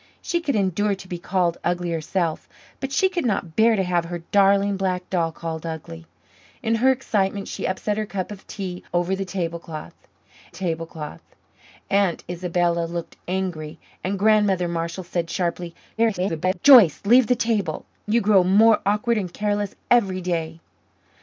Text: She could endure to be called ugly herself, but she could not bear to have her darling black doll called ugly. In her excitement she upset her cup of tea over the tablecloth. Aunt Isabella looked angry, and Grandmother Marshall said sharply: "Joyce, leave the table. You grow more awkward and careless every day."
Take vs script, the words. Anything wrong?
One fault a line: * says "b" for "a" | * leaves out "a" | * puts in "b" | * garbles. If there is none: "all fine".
* puts in "tablecloth"
* garbles